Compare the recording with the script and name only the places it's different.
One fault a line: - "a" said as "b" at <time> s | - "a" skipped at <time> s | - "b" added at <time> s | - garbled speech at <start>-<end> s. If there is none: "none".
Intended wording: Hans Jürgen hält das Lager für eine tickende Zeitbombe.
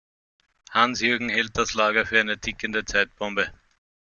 none